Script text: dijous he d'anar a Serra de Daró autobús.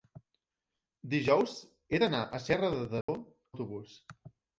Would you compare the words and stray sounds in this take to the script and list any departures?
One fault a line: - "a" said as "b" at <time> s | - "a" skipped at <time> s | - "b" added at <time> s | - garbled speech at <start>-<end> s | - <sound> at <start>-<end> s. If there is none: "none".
- dropout at 3.0-3.1 s